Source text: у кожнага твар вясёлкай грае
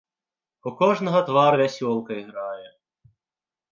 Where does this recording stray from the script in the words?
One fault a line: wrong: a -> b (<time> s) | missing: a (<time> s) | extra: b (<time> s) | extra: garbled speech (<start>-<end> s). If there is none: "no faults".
no faults